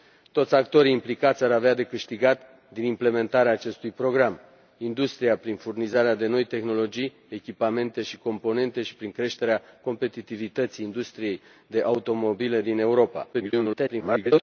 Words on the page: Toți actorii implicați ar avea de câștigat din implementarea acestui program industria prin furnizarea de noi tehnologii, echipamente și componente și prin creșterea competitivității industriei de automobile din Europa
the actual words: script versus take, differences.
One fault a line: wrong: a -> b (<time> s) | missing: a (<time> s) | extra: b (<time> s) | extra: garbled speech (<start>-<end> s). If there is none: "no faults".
extra: garbled speech (13.3-14.4 s)